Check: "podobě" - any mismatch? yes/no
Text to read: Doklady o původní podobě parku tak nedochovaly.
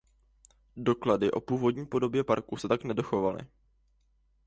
no